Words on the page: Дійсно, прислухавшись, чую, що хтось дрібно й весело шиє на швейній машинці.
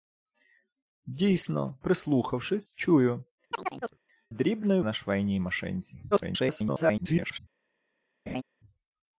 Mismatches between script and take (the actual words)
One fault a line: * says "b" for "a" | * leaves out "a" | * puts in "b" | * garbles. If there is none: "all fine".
* leaves out "що хтось"
* leaves out "весело шиє"
* garbles